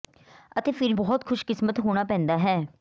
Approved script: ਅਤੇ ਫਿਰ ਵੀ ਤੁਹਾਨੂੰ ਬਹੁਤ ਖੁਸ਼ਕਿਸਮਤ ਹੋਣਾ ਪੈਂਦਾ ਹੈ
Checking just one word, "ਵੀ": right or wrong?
wrong